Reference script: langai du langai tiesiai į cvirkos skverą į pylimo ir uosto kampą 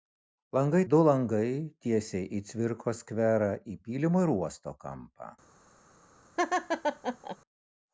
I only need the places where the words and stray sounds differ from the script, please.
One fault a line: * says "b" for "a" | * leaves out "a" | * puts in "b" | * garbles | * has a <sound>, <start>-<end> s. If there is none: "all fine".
* has a laugh, 6.4-7.4 s